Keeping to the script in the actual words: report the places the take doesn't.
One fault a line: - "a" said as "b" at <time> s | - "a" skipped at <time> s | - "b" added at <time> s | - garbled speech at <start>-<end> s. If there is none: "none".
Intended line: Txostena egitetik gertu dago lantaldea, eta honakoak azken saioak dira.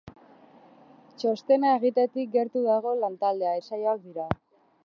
- "eta honakoak azken" skipped at 3.5 s